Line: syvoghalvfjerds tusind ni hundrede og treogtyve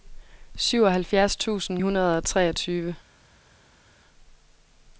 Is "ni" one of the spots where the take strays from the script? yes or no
yes